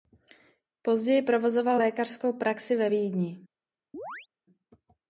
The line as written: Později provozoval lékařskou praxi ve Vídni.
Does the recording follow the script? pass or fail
pass